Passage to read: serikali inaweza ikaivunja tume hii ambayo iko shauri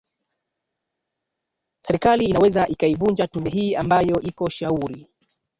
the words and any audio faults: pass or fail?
pass